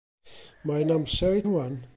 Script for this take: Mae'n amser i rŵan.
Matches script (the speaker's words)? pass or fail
pass